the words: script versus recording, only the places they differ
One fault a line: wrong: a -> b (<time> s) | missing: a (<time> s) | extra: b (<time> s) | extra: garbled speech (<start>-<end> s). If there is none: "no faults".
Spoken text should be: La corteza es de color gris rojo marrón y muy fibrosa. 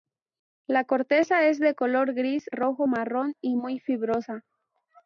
no faults